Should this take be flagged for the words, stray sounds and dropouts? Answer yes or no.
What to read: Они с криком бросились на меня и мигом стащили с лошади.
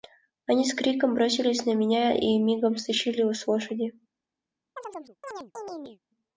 yes